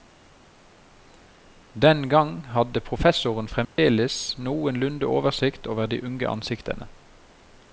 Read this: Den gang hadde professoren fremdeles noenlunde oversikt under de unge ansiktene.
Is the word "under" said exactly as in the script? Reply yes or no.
no